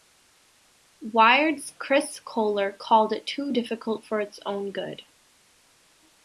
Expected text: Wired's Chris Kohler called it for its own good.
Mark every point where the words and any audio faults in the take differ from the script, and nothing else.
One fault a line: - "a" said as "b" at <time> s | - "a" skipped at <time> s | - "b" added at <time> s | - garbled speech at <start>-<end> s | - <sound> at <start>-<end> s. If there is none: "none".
- "too difficult" added at 3.3 s